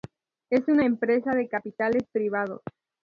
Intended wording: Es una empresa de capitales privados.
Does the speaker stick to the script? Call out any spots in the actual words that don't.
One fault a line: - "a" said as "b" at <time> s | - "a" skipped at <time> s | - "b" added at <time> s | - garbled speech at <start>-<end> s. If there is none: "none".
none